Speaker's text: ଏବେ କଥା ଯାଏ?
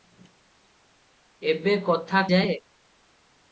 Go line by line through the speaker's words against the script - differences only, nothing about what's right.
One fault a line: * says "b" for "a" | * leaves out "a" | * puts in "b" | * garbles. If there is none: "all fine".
all fine